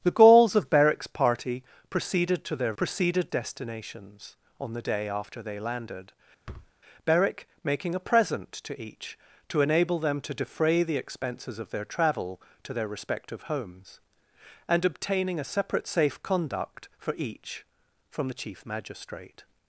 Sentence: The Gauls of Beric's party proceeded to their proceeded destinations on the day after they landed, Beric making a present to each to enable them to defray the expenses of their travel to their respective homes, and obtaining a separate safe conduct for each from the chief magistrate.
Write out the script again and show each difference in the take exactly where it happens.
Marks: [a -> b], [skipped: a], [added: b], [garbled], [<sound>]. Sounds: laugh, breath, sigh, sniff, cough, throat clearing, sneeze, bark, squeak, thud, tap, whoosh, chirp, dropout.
The Gauls of Beric's party proceeded to their proceeded destinations on the day after they landed, [thud] Beric making a present to each to enable them to defray the expenses of their travel to their respective homes, and obtaining a separate safe conduct for each from the chief magistrate.